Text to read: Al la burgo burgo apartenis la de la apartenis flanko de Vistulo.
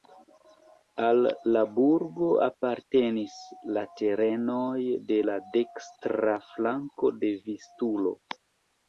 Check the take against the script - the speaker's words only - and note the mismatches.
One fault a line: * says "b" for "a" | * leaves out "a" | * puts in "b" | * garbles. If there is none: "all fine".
* leaves out "burgo"
* puts in "terenoj"
* says "dekstra" for "apartenis"